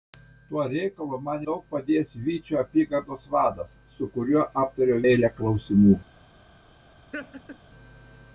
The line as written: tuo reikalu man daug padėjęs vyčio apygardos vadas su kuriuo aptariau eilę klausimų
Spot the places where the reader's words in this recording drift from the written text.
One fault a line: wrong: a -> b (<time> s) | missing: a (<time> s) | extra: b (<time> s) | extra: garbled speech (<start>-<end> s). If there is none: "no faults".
no faults